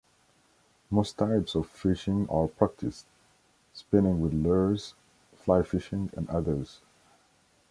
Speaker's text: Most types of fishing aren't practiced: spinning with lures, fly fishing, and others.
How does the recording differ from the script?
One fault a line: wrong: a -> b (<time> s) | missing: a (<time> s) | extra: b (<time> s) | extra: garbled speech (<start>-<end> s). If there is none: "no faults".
wrong: aren't -> are (2.3 s)